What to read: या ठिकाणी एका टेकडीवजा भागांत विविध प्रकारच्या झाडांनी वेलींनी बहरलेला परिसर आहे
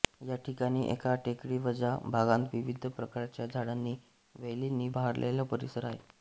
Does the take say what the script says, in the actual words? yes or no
yes